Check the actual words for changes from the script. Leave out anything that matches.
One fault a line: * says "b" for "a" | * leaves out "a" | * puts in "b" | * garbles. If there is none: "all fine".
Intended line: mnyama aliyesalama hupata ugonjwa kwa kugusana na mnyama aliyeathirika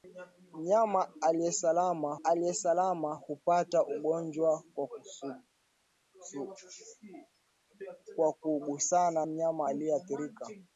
* puts in "aliyesalama"
* leaves out "na"